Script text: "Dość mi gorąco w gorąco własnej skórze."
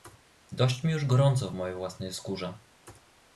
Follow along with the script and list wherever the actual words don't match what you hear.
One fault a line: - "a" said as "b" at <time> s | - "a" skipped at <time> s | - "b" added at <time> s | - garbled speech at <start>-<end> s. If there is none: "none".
- "już" added at 0.9 s
- "gorąco" said as "mojej" at 1.5 s